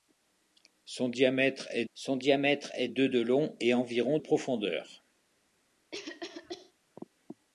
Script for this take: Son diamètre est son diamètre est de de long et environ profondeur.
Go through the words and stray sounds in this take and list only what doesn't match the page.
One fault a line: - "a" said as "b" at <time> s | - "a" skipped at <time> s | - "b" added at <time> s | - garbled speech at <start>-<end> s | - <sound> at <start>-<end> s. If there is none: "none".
- cough at 5.9-6.7 s